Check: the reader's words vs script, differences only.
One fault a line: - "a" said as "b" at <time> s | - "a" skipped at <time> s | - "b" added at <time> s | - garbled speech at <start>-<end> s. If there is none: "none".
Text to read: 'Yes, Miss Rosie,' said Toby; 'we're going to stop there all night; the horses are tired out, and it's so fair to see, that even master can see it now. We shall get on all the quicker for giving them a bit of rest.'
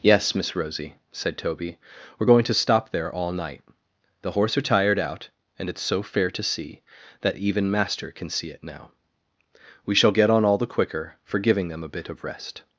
- "horses" said as "horse" at 4.3 s